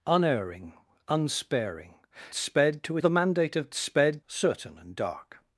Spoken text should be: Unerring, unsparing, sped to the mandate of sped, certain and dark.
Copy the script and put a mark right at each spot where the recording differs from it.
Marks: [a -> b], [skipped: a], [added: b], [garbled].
Unerring, unsparing, sped to the mandate of sped, certain and dark.